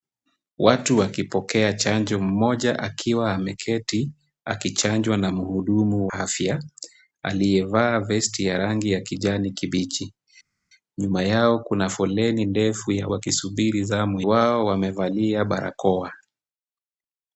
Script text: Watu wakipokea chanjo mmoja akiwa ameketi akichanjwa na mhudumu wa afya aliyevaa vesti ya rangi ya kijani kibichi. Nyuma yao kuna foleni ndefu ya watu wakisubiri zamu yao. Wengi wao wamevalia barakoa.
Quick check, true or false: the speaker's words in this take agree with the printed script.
false